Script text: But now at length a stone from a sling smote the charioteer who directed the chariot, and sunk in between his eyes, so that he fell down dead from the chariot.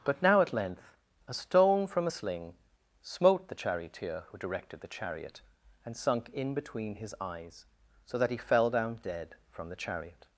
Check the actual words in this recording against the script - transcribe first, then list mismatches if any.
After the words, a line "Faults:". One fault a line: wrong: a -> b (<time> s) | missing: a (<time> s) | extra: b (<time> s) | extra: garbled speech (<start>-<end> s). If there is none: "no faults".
But now at length a stone from a sling smote the charioteer who directed the chariot, and sunk in between his eyes, so that he fell down dead from the chariot.
Faults:
no faults